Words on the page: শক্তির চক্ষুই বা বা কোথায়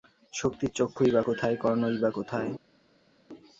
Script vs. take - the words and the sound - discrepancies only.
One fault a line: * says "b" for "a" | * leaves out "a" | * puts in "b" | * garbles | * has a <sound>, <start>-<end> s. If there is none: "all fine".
* puts in "কোথায় কর্ণই"